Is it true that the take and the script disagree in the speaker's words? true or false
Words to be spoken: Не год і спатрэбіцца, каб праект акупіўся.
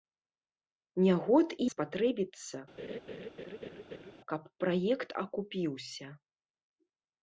false